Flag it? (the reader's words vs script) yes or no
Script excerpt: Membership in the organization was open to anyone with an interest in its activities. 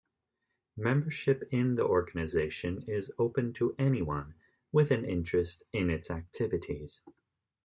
yes